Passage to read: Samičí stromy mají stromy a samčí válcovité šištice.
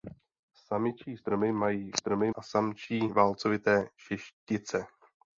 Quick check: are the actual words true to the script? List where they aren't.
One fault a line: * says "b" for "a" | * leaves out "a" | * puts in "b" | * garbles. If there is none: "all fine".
all fine